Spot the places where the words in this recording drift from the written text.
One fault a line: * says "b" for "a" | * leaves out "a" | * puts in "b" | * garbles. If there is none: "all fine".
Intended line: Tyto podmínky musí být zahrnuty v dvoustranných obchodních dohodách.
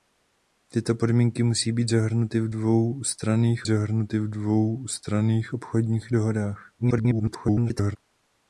* puts in "zahrnuty v dvoustranných"
* garbles